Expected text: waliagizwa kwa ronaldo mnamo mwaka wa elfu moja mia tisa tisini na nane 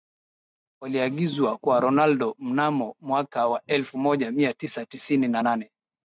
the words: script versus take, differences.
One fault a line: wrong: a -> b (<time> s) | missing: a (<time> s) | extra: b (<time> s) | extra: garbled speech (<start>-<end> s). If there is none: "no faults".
no faults